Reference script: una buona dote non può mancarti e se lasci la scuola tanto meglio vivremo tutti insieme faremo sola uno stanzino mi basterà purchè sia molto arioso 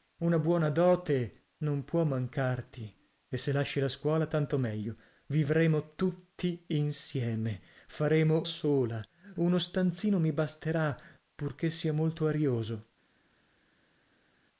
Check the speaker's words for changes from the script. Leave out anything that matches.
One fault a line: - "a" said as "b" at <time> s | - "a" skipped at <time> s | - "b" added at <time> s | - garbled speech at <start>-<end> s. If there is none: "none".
none